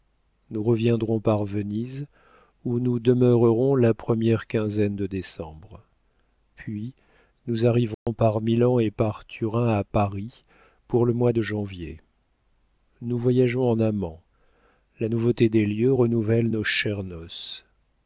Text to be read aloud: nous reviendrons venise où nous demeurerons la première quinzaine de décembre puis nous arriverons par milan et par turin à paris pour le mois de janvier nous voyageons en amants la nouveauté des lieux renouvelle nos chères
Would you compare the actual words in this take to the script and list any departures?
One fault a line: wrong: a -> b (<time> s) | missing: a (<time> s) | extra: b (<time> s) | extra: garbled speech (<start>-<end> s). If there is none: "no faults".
extra: par (1.2 s)